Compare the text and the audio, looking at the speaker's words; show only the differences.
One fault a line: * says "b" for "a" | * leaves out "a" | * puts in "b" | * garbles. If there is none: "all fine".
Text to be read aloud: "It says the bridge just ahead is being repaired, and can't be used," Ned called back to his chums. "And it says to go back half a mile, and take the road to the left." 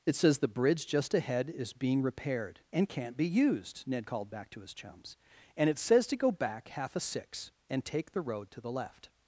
* says "six" for "mile"